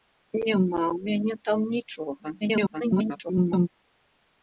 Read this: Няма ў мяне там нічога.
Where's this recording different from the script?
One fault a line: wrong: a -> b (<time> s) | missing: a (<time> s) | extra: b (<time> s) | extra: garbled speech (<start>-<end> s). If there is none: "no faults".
extra: garbled speech (2.4-3.7 s)